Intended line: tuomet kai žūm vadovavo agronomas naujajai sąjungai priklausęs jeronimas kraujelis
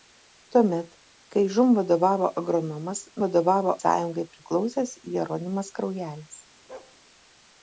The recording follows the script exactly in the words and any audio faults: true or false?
false